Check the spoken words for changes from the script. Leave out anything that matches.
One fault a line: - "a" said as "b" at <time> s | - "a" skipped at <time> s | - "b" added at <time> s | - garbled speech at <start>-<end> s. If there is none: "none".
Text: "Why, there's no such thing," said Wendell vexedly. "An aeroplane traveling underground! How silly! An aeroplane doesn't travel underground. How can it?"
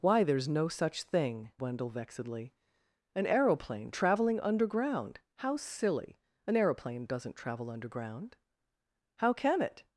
- "said" skipped at 1.5 s